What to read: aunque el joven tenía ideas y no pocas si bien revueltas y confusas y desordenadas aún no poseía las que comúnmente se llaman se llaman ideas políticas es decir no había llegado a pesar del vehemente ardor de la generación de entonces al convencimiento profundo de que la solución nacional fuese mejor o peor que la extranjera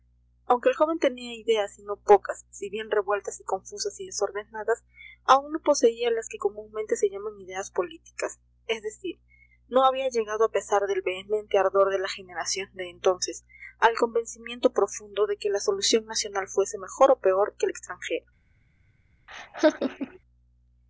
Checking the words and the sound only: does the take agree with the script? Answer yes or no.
no